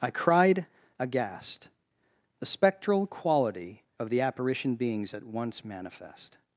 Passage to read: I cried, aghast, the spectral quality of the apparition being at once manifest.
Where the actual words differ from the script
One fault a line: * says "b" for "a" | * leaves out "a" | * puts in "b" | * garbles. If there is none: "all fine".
* says "beings" for "being"